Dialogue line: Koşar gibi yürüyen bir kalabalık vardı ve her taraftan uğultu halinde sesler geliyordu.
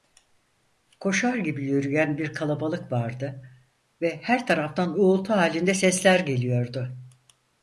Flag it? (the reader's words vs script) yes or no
no